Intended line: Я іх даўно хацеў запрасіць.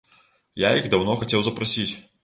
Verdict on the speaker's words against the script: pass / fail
pass